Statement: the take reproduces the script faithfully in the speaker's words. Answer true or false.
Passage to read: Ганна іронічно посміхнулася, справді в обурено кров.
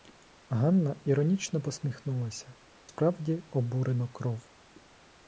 true